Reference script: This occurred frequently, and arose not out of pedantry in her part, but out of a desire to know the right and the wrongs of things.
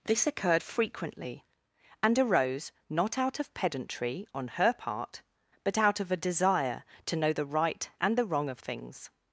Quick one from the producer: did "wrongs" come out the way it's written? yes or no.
no